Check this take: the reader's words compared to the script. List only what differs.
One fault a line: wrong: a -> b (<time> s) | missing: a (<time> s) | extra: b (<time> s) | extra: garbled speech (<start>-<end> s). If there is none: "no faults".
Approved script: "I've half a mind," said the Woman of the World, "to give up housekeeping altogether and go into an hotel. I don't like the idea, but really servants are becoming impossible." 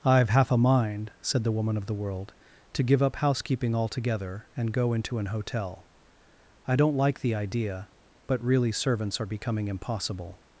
no faults